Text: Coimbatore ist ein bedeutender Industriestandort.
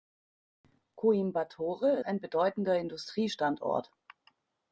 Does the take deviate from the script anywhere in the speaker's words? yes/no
yes